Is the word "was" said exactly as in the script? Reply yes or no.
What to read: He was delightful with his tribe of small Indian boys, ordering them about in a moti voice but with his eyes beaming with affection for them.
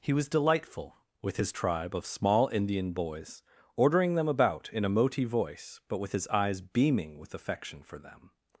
yes